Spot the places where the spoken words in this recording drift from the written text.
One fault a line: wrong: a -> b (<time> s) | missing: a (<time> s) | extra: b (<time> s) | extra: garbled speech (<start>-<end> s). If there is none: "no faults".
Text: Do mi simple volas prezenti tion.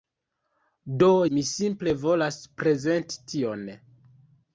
no faults